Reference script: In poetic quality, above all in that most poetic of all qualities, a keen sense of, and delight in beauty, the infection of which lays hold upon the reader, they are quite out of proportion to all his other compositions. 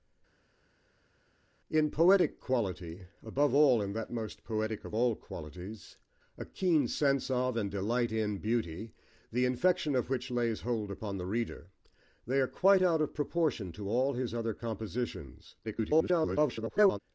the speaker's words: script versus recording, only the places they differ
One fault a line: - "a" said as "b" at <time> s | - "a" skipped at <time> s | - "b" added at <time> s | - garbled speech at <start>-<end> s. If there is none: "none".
- garbled speech at 15.6-17.0 s